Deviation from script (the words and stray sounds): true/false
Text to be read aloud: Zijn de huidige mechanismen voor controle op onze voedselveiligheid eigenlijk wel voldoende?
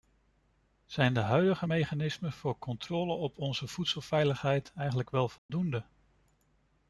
true